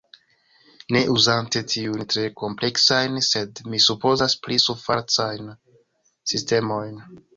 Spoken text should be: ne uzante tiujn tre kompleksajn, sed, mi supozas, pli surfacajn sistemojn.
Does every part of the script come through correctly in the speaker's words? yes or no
yes